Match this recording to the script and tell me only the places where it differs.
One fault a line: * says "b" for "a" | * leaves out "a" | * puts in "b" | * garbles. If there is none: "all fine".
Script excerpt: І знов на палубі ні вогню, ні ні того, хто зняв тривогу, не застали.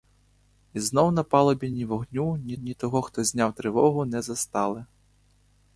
all fine